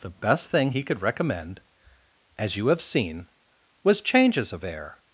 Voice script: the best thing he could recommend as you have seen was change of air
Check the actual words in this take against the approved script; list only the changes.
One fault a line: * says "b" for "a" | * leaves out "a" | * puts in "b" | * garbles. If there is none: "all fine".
* says "changes" for "change"